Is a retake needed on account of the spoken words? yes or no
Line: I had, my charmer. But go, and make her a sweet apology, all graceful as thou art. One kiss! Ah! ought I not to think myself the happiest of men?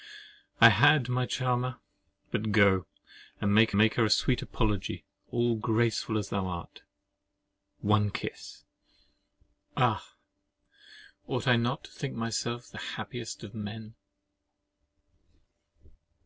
yes